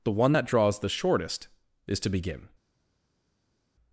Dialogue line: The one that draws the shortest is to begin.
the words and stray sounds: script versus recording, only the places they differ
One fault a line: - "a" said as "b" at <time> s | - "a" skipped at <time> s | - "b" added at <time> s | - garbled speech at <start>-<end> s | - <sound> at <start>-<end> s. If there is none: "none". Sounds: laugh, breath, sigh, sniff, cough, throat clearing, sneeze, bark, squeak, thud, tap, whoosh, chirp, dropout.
none